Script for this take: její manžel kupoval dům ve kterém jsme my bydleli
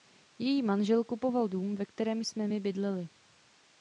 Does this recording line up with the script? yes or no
yes